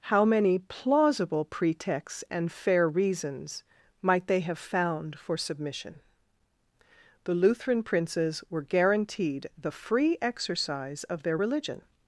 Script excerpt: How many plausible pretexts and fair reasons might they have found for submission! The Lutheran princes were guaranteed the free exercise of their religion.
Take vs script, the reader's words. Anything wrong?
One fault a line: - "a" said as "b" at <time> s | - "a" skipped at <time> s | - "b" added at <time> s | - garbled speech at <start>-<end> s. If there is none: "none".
none